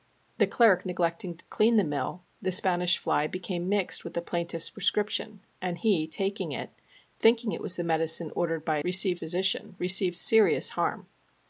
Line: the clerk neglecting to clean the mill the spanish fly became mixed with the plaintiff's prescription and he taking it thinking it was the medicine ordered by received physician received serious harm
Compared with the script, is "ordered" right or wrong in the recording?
right